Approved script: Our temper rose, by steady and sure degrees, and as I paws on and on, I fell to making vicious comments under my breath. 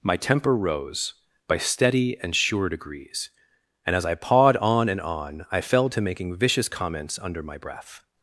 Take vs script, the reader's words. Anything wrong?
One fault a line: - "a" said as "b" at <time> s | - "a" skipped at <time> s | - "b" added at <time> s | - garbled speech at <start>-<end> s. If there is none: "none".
- "Our" said as "My" at 0.0 s
- "paws" said as "pawed" at 4.2 s